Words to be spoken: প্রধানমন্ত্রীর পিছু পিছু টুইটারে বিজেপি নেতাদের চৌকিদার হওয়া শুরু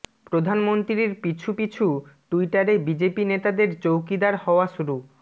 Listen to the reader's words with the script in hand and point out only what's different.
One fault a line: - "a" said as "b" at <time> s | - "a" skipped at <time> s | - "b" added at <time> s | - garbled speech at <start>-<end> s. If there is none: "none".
none